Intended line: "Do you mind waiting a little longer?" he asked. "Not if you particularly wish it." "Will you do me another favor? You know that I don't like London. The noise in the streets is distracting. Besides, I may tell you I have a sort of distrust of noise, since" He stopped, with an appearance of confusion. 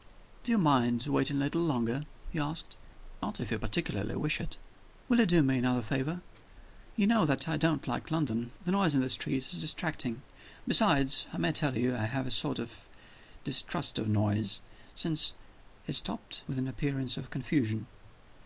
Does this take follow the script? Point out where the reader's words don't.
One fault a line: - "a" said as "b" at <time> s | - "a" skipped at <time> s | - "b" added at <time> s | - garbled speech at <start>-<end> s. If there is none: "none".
none